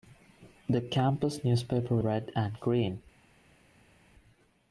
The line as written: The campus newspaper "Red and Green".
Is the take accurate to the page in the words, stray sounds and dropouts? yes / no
yes